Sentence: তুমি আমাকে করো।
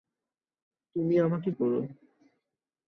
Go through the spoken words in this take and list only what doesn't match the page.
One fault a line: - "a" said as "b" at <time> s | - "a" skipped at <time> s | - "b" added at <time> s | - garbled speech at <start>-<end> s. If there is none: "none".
none